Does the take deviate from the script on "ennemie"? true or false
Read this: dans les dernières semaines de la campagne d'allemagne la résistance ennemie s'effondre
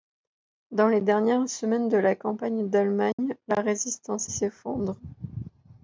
true